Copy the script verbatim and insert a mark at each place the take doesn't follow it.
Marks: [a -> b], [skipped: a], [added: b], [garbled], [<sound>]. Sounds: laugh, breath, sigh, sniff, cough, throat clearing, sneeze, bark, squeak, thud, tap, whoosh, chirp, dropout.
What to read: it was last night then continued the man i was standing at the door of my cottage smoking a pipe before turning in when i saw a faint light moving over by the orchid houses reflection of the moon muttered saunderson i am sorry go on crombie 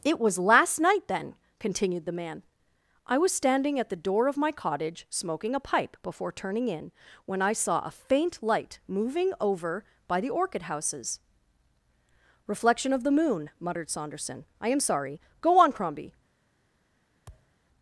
it was last night then continued the man i was standing at the door of my cottage smoking a pipe before turning in when i saw a faint light moving over by the orchid houses reflection of the moon muttered saunderson i am sorry go on crombie [thud]